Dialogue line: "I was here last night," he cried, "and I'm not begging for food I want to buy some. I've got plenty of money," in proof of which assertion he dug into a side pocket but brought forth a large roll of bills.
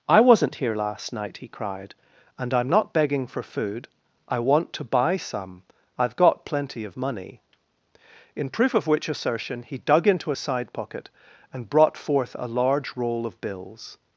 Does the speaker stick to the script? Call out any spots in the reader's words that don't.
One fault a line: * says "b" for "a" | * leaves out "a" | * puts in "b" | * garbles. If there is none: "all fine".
* says "wasn't" for "was"
* says "and" for "but"